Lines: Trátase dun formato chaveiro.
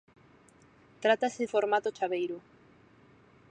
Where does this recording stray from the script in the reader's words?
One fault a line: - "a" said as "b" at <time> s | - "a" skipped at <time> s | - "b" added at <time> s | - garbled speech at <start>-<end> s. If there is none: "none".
- "dun" skipped at 1.4 s